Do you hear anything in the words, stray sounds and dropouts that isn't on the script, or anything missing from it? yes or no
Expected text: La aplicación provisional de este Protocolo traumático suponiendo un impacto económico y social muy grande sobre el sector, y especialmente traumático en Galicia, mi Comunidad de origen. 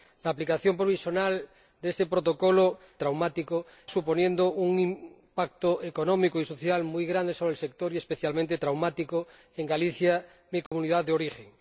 yes